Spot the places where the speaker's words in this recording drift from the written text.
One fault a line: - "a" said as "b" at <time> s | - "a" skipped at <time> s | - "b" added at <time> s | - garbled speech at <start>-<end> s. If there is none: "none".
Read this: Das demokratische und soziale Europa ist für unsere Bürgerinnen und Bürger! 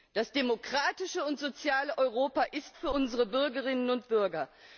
none